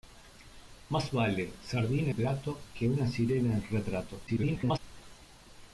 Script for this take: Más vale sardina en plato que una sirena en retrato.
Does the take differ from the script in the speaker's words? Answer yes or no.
yes